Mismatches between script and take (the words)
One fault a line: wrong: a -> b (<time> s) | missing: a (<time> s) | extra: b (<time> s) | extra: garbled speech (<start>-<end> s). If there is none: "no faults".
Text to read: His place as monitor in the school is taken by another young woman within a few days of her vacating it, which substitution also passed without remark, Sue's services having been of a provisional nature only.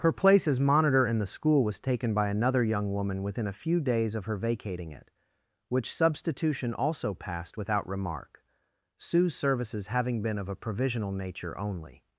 wrong: His -> Her (0.0 s)
wrong: is -> was (1.6 s)